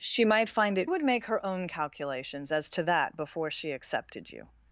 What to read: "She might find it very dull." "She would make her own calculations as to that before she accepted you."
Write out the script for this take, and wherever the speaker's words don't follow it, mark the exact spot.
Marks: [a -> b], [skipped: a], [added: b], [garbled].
"She might find it [skipped: very dull." "She] would make her own calculations as to that before she accepted you."